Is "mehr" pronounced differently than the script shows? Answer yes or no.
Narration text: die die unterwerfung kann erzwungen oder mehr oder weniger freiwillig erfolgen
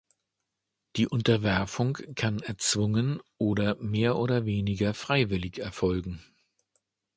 no